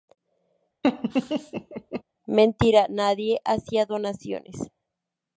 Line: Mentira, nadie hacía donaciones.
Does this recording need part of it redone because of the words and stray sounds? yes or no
yes